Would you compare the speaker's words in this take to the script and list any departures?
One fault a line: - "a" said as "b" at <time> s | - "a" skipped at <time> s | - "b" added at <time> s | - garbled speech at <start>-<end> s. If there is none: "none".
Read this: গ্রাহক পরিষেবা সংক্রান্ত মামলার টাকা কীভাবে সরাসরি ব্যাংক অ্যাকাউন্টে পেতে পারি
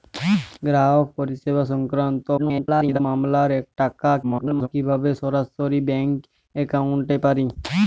- garbled speech at 2.4-3.0 s
- garbled speech at 4.2-4.7 s
- "পেতে" skipped at 7.2 s